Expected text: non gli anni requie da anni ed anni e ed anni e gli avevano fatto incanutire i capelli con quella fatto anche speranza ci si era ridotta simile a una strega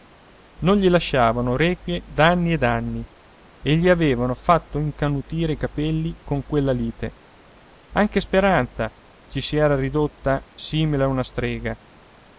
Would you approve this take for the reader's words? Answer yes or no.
no